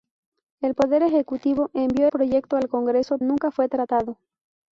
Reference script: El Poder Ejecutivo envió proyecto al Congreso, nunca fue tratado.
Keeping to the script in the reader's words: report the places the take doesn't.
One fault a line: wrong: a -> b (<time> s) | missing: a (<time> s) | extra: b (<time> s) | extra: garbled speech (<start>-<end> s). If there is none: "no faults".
no faults